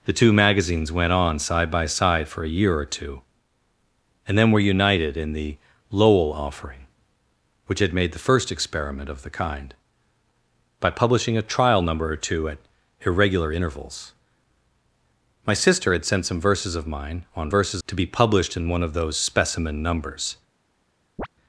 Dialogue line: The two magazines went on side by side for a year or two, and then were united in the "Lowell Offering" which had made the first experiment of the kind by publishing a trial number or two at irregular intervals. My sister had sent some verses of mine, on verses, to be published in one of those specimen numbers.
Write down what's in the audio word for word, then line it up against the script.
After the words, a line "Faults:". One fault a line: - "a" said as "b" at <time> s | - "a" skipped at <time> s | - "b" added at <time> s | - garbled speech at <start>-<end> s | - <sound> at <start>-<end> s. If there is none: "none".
The two magazines went on side by side for a year or two, and then were united in the "Lowell Offering" which had made the first experiment of the kind by publishing a trial number or two at irregular intervals. My sister had sent some verses of mine, on verses, to be published in one of those specimen numbers.
Faults:
- chirp at 21.2-21.3 s